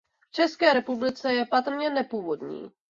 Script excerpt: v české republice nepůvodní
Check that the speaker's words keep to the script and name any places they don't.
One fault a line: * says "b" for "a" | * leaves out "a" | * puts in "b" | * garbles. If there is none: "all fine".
* puts in "je patrně"